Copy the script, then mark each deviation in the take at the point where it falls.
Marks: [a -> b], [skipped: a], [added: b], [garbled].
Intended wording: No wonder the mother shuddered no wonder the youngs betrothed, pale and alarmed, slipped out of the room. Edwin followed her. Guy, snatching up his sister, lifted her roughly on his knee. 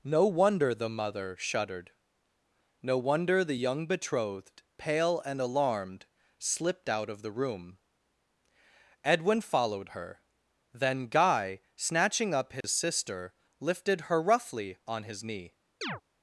No wonder the mother shuddered no wonder the [youngs -> young] betrothed, pale and alarmed, slipped out of the room. Edwin followed her. [added: Then] Guy, snatching up his sister, lifted her roughly on his knee.